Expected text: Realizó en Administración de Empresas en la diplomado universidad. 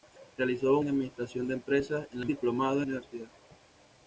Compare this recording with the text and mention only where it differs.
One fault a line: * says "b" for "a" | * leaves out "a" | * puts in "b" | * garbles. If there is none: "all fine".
all fine